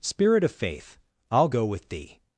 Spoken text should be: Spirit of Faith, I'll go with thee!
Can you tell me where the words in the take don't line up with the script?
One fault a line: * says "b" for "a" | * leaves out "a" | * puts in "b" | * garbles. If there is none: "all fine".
all fine